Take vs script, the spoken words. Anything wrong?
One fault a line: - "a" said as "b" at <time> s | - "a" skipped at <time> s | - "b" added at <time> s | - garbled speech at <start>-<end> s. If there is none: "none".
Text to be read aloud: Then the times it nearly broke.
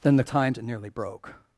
none